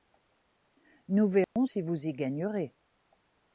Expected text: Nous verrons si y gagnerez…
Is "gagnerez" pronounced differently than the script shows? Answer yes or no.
no